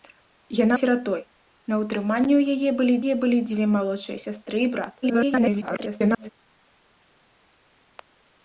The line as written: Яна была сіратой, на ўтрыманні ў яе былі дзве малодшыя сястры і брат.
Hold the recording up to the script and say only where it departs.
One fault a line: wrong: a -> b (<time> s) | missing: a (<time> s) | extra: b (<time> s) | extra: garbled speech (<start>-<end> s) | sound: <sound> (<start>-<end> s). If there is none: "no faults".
missing: была (0.8 s)
extra: яе былі (3.0 s)
extra: garbled speech (5.0-6.3 s)